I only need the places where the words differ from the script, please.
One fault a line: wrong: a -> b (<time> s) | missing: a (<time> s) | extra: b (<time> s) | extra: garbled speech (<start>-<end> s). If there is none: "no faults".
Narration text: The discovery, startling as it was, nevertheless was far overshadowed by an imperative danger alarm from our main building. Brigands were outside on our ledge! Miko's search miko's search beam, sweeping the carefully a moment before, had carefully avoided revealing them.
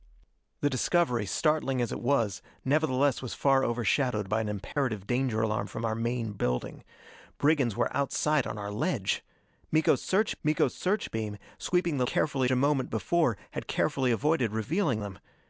no faults